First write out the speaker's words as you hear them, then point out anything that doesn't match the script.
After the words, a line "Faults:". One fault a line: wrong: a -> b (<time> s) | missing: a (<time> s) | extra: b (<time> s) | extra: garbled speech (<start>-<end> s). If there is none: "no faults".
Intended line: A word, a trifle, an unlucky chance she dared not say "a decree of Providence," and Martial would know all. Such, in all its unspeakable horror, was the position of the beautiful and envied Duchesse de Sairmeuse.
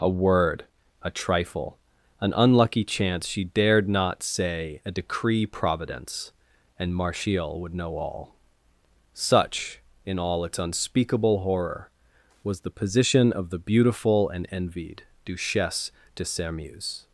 A word, a trifle, an unlucky chance she dared not say "a decree Providence," and Martial would know all. Such, in all its unspeakable horror, was the position of the beautiful and envied Duchesse de Sairmeuse.
Faults:
missing: of (5.5 s)